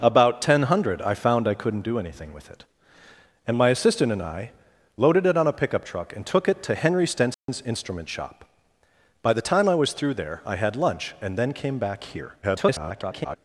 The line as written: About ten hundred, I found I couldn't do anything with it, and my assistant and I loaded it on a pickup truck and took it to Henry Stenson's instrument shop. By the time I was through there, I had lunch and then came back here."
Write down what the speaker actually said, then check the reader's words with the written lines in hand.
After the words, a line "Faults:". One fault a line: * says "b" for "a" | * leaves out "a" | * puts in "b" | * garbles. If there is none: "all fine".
About ten hundred, I found I couldn't do anything with it, and my assistant and I loaded it on a pickup truck and took it to Henry Stenson's instrument shop. By the time I was through there, I had lunch and then came back here." [garbled]
Faults:
* garbles